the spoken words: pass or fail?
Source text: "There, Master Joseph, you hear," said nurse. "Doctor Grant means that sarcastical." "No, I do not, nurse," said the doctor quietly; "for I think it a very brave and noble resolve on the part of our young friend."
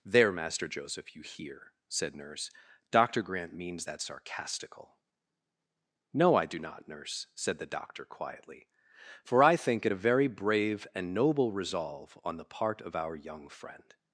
pass